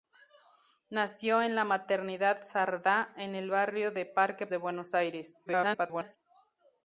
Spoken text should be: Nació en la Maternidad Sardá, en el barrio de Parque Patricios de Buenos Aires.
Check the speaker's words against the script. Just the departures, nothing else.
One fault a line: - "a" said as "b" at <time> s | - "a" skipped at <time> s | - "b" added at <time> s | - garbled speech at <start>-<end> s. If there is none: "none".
- "Patricios" skipped at 4.5 s
- garbled speech at 5.5-6.2 s